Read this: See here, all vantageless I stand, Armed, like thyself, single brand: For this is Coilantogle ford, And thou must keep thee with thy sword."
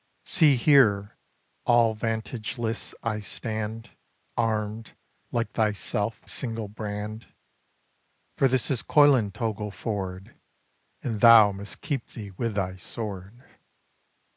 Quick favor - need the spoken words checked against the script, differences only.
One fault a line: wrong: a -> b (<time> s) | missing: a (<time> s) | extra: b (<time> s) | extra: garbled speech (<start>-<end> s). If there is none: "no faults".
no faults